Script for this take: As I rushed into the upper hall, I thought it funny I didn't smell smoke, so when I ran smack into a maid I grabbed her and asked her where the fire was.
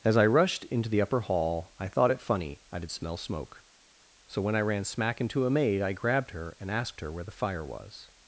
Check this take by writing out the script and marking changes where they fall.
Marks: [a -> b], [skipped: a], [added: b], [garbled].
As I rushed into the upper hall, I thought it funny I [didn't -> did] smell smoke, so when I ran smack into a maid I grabbed her and asked her where the fire was.